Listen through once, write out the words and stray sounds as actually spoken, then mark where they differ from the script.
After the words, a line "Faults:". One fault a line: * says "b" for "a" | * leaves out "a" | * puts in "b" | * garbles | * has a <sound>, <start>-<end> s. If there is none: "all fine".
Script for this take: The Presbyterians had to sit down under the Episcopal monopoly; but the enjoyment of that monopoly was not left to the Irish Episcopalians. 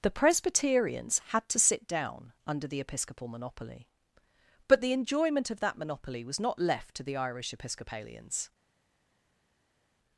The Presbyterians had to sit down under the Episcopal monopoly; but the enjoyment of that monopoly was not left to the Irish Episcopalians.
Faults:
all fine